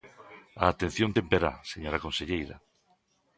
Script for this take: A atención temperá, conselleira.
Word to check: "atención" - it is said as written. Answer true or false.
true